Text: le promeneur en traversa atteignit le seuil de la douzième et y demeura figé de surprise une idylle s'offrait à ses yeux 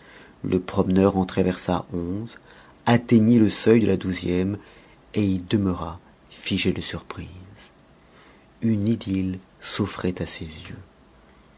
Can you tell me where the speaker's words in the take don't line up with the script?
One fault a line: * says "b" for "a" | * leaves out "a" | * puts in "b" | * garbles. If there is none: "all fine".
* puts in "onze"